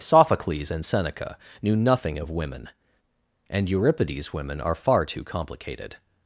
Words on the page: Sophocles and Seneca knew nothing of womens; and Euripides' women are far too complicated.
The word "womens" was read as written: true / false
false